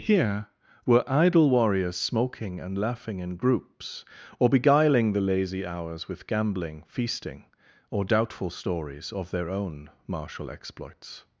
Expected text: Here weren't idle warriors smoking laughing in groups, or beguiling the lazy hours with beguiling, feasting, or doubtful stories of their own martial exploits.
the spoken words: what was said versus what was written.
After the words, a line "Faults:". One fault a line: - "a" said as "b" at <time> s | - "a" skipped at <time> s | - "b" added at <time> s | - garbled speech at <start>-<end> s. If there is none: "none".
Here were idle warriors smoking and laughing in groups, or beguiling the lazy hours with gambling, feasting, or doubtful stories of their own martial exploits.
Faults:
- "weren't" said as "were" at 0.9 s
- "and" added at 2.6 s
- "beguiling" said as "gambling" at 6.2 s